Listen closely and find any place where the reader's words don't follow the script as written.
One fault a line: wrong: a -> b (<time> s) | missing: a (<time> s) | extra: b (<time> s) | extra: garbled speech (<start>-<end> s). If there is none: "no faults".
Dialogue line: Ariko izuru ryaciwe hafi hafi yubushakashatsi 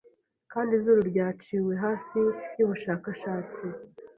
wrong: Ariko -> Kandi (0.5 s)
missing: hafi (2.2 s)